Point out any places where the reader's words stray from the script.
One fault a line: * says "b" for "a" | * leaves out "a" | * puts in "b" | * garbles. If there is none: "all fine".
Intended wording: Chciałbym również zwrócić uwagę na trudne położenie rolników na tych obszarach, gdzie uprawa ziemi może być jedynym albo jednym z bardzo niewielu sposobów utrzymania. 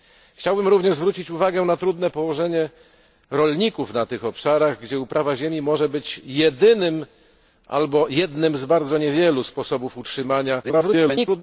* garbles